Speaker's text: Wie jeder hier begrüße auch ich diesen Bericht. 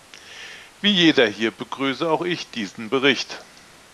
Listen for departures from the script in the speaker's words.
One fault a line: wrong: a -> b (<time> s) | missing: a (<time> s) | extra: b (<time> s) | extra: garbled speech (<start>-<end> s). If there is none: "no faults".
no faults